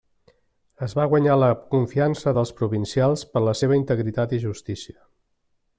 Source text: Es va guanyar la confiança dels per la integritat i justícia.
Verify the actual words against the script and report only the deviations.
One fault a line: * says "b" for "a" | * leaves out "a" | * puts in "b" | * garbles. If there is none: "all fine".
* puts in "provincials"
* puts in "seva"